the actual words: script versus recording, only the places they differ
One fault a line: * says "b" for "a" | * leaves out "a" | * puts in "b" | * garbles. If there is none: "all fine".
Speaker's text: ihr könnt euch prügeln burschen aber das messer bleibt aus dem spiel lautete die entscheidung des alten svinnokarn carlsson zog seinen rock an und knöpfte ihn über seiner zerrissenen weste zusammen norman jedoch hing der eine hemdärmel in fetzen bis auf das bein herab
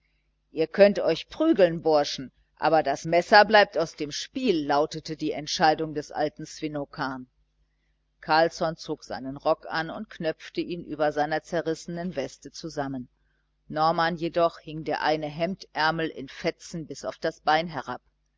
all fine